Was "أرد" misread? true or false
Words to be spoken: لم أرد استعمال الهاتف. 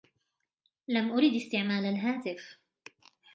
false